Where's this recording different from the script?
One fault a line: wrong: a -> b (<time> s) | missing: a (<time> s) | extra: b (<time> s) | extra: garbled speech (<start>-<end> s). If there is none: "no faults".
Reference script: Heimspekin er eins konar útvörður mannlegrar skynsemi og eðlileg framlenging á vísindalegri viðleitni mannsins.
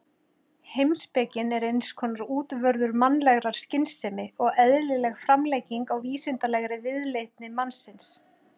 no faults